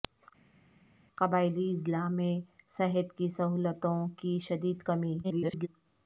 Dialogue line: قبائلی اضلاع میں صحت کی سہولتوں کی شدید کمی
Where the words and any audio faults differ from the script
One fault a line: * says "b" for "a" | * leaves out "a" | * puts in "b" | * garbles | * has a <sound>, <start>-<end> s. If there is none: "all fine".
* garbles